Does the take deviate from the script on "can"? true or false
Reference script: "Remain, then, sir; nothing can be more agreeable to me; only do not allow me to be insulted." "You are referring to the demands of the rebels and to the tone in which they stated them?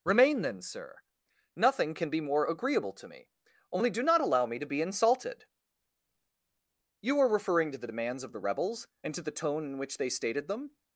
false